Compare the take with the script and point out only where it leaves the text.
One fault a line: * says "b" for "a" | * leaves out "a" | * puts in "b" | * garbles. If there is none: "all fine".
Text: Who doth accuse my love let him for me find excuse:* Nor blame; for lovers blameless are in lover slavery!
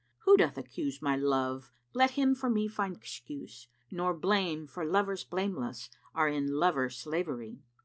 all fine